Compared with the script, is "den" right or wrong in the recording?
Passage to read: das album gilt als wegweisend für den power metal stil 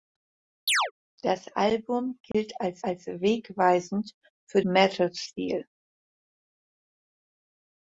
wrong